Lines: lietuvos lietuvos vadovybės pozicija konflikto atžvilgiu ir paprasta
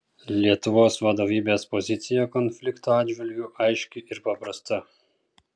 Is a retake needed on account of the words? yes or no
yes